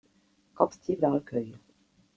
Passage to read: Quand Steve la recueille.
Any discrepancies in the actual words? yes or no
no